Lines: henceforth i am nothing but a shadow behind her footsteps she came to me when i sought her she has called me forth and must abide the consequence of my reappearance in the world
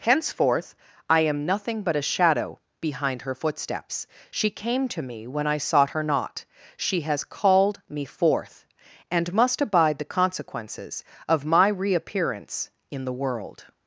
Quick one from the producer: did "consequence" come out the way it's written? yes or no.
no